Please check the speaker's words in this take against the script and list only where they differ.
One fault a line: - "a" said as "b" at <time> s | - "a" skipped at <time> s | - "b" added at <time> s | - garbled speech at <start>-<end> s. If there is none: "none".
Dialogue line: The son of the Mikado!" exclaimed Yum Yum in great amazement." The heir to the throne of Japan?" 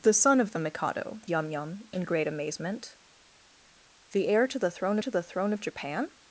- "exclaimed" skipped at 1.2 s
- "to the throne" added at 5.0 s